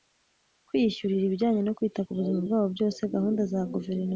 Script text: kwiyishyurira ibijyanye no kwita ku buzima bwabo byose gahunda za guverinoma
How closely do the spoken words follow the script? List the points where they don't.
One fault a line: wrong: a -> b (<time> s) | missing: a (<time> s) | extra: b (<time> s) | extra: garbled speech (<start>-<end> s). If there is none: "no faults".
no faults